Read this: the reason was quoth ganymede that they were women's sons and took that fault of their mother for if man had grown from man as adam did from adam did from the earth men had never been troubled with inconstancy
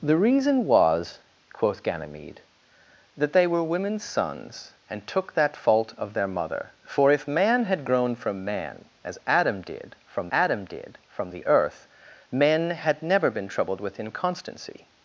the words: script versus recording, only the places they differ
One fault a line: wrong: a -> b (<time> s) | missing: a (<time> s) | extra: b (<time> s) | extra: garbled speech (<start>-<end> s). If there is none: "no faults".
no faults